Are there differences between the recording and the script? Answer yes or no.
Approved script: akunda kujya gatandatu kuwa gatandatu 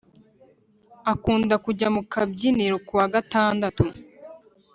yes